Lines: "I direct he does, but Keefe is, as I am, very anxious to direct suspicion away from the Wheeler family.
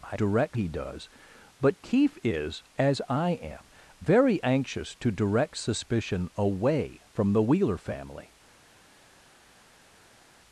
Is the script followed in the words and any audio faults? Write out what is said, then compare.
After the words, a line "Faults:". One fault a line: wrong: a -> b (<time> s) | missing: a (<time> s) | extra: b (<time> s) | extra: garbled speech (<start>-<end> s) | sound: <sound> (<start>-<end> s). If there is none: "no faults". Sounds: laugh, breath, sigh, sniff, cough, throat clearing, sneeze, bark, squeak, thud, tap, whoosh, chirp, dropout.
"I direct he does, but Keefe is, as I am, very anxious to direct suspicion away from the Wheeler family.
Faults:
no faults